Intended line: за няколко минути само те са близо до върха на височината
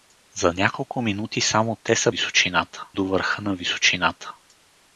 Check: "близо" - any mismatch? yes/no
yes